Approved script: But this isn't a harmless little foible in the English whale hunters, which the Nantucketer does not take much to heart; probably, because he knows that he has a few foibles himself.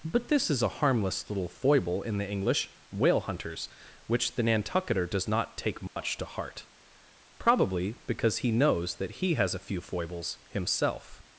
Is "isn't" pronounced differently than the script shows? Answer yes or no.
yes